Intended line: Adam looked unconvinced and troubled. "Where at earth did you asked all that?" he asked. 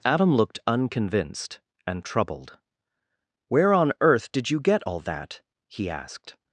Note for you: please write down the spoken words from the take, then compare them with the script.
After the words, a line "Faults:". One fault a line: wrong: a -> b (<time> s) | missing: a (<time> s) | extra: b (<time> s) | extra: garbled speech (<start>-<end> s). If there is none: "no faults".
Adam looked unconvinced and troubled. "Where on earth did you get all that?" he asked.
Faults:
wrong: at -> on (3.7 s)
wrong: asked -> get (4.6 s)